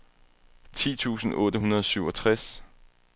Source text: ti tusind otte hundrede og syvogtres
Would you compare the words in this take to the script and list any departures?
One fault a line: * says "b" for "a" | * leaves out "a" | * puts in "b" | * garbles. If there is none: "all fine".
all fine